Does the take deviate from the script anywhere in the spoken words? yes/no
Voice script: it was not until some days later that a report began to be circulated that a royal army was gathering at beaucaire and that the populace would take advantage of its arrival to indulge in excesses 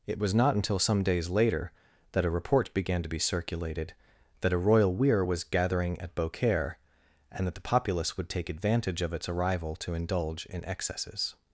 yes